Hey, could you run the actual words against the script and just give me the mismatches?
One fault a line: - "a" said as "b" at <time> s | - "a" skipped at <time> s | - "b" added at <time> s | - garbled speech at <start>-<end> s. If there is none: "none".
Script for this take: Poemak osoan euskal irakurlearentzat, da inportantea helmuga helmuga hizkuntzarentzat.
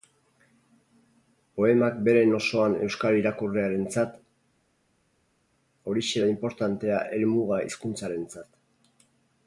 - "beren" added at 2.1 s
- "horixe" added at 5.9 s
- "helmuga" skipped at 7.6 s